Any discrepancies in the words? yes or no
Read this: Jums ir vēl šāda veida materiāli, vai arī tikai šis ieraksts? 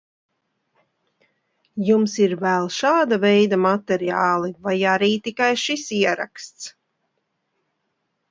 no